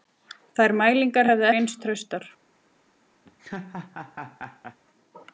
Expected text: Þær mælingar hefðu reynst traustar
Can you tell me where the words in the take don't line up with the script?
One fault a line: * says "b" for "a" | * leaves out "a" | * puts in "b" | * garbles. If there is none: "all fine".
all fine